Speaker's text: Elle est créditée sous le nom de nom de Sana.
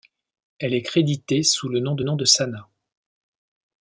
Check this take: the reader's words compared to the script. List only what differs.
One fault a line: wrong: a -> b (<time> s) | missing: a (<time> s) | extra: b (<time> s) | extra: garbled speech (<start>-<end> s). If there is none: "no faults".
no faults